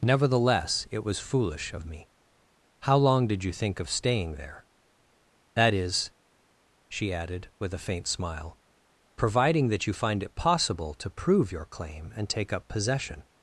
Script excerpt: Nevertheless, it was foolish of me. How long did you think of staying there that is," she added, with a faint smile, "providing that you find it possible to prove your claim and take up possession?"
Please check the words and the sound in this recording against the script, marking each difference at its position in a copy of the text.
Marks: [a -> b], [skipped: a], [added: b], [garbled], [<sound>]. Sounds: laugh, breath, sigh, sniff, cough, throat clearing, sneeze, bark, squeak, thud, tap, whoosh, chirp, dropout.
Nevertheless, it was foolish of me. How long did you think of staying there that is," she added, with a faint smile, "providing that you find it possible to prove your claim and take up possession?"